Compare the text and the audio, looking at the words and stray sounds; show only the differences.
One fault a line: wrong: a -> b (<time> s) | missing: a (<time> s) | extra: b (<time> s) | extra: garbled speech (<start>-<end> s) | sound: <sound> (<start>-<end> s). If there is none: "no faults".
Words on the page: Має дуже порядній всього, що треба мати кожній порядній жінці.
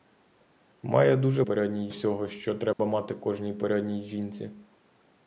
sound: dropout (2.7-2.8 s)